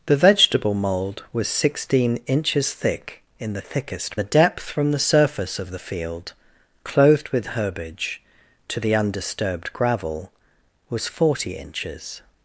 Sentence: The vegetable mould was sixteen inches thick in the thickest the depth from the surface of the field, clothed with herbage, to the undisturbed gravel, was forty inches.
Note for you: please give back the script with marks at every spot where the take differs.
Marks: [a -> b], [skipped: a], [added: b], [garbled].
The vegetable mould was sixteen inches thick in the thickest the depth from the surface of the field, clothed with herbage, to the undisturbed gravel, was forty inches.